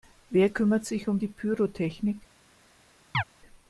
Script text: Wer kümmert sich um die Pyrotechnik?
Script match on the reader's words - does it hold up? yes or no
yes